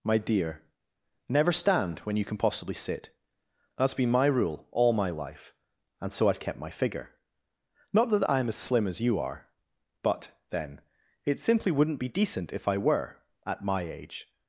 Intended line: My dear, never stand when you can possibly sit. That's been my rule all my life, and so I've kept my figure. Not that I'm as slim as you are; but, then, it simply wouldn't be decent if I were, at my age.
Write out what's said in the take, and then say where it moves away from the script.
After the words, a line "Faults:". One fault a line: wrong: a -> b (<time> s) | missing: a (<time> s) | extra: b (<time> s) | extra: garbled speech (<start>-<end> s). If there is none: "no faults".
My dear, never stand when you can possibly sit. That's been my rule all my life, and so I've kept my figure. Not that I'm as slim as you are; but, then, it simply wouldn't be decent if I were, at my age.
Faults:
no faults